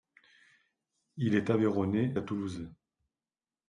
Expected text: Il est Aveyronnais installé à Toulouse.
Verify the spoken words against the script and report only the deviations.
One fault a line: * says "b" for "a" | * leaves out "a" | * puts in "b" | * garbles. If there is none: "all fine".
* leaves out "installé"